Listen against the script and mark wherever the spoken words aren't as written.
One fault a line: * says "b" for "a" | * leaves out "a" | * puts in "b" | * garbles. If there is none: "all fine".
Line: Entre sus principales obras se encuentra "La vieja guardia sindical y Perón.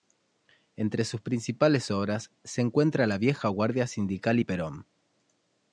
all fine